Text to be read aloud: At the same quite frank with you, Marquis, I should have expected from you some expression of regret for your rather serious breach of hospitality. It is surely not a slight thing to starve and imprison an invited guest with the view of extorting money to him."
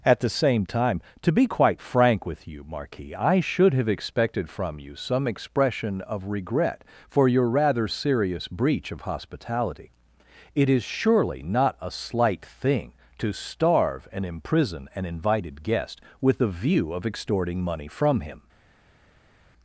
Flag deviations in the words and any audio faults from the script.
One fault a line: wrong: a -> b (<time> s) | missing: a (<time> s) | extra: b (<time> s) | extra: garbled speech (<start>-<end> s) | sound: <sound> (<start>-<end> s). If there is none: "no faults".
extra: time to be (0.7 s)
wrong: to -> from (17.9 s)